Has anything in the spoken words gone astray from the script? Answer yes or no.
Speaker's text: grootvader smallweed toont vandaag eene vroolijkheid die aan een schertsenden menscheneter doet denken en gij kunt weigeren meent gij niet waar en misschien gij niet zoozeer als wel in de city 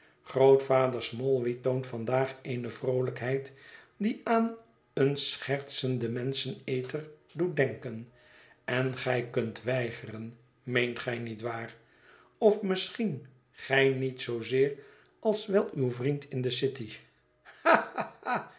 yes